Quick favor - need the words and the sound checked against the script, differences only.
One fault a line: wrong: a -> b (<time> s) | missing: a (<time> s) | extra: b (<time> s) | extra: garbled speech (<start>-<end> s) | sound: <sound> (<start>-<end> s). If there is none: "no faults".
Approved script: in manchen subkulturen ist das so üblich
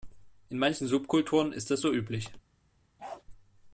sound: bark (3.0-3.2 s)